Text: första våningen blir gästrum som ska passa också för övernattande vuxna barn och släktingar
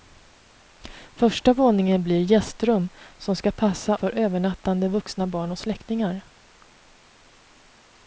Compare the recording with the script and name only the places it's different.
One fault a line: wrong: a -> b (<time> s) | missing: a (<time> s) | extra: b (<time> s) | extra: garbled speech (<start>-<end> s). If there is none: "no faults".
missing: också (4.0 s)